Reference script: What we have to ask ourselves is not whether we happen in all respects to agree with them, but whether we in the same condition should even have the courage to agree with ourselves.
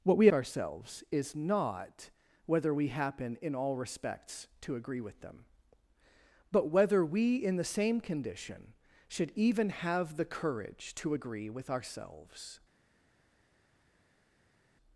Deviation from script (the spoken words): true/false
true